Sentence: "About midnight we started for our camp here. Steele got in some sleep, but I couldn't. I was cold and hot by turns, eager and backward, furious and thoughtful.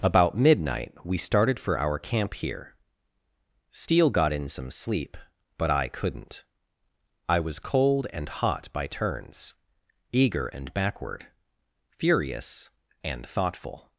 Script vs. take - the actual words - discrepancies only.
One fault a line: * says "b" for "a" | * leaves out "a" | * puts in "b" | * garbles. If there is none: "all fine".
all fine